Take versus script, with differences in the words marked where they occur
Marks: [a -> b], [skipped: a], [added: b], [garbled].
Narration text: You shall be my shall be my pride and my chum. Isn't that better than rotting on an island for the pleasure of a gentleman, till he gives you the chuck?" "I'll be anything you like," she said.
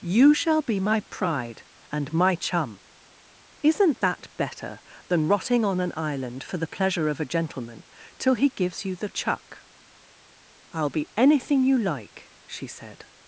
You shall be my [skipped: shall be my] pride and my chum. Isn't that better than rotting on an island for the pleasure of a gentleman, till he gives you the chuck?" "I'll be anything you like," she said.